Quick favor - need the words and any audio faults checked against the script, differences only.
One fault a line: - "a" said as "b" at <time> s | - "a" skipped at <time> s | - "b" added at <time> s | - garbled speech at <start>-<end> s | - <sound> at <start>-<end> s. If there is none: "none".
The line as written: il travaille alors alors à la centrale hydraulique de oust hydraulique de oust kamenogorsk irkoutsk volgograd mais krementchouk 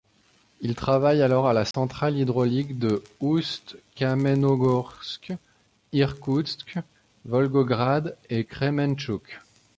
- "alors" skipped at 1.5 s
- dropout at 1.7-1.7 s
- "hydraulique de oust" skipped at 3.8 s
- "mais" said as "et" at 8.3 s